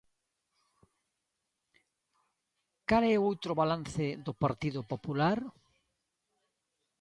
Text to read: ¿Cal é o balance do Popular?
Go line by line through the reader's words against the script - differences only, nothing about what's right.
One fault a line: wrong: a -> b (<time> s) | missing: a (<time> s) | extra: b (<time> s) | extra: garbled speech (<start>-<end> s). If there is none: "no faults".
extra: outro (3.3 s)
extra: Partido (4.4 s)